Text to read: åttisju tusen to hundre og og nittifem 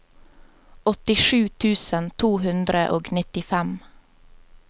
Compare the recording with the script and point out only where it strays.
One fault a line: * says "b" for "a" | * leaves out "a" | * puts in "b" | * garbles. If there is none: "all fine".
* leaves out "og"